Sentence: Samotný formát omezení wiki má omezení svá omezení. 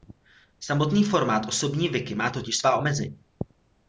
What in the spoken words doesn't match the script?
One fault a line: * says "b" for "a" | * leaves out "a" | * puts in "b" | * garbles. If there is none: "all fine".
* says "osobní" for "omezení"
* says "totiž" for "omezení"